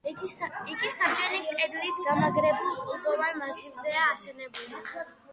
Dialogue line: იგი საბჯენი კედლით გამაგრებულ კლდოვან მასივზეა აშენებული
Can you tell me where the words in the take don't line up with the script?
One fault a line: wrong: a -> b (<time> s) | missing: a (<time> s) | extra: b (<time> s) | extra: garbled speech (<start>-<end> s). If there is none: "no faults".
no faults